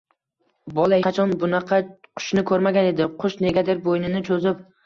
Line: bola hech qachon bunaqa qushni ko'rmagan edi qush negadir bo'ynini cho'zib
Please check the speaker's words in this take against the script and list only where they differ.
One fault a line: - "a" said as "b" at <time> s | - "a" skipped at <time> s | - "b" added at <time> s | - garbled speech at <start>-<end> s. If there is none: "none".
- "hech" skipped at 1.0 s